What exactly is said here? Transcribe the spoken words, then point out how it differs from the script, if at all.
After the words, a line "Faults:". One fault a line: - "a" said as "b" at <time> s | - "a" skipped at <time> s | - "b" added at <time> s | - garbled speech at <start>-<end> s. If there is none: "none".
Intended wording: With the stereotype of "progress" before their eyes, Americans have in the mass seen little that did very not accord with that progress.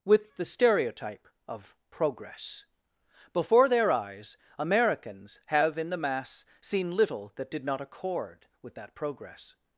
With the stereotype of "progress" before their eyes, Americans have in the mass seen little that did not accord with that progress.
Faults:
- "very" skipped at 7.6 s